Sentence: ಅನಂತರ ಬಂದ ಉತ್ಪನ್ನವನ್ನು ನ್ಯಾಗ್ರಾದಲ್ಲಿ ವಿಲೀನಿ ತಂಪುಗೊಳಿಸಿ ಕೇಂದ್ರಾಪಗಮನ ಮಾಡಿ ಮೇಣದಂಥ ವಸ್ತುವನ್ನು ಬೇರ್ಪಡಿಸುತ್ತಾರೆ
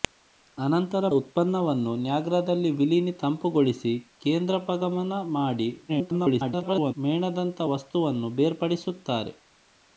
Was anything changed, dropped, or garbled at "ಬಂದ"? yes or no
yes